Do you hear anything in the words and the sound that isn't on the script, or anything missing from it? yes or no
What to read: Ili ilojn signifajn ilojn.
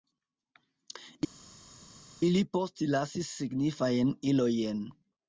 yes